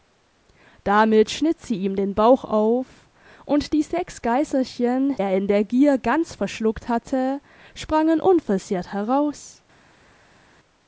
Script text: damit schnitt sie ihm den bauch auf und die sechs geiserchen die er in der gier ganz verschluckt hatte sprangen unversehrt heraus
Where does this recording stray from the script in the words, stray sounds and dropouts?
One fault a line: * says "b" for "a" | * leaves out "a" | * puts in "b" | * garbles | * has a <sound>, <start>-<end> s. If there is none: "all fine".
* leaves out "die"